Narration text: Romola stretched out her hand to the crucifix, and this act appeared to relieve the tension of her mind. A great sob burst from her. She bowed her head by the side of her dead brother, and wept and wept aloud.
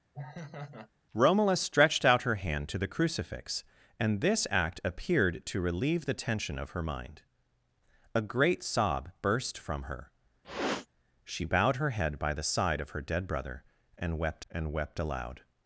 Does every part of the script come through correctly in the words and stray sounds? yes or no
no